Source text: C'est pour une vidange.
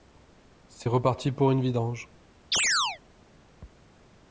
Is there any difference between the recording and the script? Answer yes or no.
yes